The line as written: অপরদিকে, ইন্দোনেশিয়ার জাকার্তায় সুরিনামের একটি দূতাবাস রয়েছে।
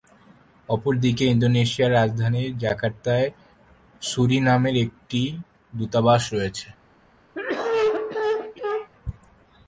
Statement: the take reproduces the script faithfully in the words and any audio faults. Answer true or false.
false